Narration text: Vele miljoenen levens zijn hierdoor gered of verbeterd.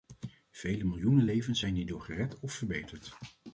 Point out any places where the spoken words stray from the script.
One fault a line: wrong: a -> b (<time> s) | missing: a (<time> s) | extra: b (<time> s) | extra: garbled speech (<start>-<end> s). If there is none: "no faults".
no faults